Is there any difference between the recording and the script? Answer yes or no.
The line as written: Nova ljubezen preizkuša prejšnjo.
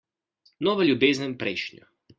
yes